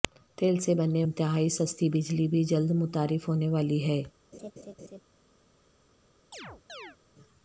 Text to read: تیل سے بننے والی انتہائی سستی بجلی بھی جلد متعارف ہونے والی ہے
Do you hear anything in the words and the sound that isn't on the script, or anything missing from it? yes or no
yes